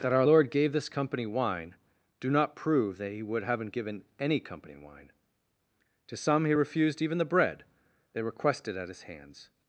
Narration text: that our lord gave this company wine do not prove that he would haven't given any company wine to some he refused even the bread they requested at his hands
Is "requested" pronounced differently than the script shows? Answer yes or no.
no